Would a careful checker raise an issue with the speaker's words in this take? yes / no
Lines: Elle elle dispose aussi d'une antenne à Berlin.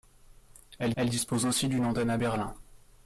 no